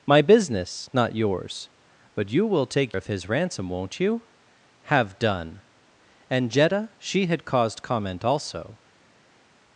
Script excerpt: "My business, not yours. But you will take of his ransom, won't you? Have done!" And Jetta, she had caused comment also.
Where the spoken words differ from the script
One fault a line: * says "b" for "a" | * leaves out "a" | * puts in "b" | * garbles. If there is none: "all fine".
all fine